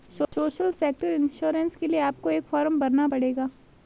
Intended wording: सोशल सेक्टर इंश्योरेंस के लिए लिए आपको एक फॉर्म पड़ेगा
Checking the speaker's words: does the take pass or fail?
fail